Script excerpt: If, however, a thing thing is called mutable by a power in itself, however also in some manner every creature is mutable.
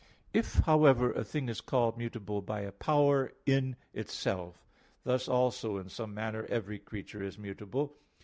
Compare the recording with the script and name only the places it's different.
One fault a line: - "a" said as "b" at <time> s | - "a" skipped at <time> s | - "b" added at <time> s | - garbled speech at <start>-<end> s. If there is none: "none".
- "thing" skipped at 1.5 s
- "however" said as "thus" at 5.0 s